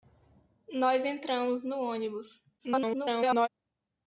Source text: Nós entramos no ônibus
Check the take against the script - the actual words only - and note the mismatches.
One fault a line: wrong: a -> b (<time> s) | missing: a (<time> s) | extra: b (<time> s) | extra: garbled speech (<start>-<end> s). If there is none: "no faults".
extra: garbled speech (2.6-3.5 s)